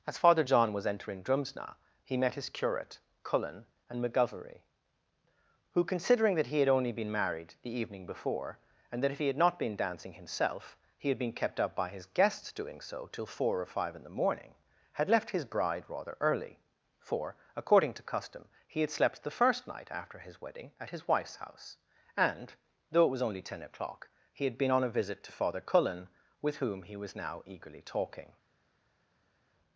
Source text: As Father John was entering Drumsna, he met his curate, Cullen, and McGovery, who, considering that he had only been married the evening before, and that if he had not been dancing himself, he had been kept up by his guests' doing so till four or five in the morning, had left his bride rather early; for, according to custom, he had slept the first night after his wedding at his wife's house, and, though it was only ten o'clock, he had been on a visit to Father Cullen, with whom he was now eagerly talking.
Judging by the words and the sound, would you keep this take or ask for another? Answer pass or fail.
pass